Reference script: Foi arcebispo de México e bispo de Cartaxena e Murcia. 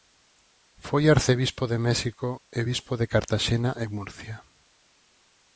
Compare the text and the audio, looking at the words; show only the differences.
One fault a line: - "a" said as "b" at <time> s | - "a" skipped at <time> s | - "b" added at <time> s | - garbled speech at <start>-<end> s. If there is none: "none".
none